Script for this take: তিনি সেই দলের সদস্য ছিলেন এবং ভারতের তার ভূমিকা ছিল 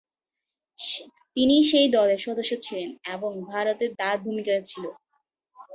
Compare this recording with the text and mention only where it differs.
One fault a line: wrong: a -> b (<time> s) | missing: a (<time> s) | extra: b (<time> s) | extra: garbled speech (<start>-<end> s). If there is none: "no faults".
no faults